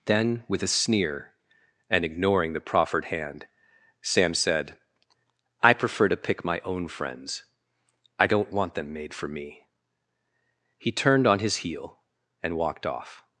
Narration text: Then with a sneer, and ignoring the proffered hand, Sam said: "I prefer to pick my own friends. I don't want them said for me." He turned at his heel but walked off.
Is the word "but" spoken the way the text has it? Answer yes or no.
no